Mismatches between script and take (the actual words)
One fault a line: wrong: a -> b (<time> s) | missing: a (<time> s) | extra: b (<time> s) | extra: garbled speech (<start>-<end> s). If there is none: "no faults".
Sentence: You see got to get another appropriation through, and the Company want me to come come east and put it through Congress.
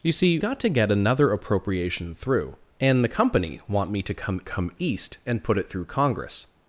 no faults